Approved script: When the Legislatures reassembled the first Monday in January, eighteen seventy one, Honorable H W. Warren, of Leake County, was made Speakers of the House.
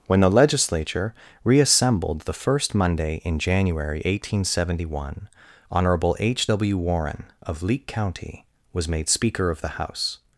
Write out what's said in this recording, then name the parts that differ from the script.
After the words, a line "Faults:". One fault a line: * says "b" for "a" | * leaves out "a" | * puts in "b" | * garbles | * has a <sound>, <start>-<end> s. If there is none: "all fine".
When the Legislature reassembled the first Monday in January, eighteen seventy one, Honorable H W. Warren, of Leake County, was made Speaker of the House.
Faults:
* says "Legislature" for "Legislatures"
* says "Speaker" for "Speakers"